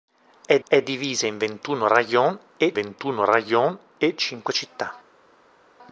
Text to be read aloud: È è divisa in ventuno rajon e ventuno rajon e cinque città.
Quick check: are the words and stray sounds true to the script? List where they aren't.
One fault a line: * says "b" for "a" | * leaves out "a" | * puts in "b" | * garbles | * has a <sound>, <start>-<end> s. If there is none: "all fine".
all fine